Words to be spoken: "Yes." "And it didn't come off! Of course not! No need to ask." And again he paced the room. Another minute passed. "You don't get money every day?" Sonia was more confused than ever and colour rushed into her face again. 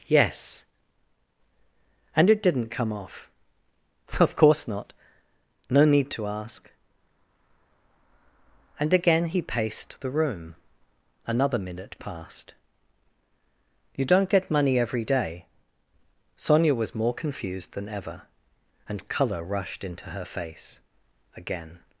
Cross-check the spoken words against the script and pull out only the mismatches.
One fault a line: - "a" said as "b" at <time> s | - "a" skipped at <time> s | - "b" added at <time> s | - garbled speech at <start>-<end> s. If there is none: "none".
none